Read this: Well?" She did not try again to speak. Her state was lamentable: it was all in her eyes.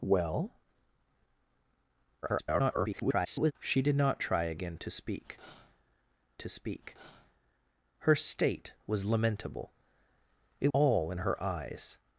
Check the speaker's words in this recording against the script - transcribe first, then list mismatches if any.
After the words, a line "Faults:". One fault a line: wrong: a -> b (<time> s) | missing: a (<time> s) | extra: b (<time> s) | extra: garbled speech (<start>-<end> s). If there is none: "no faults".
Well?" [garbled] She did not try again to speak to speak. Her state was lamentable: it all in her eyes.
Faults:
extra: garbled speech (2.2-3.5 s)
extra: to speak (6.4 s)
missing: was (10.7 s)